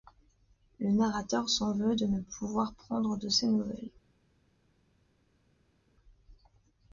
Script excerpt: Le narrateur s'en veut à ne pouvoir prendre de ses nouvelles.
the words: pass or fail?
fail